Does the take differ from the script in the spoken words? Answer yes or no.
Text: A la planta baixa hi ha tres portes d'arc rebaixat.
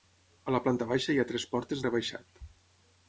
yes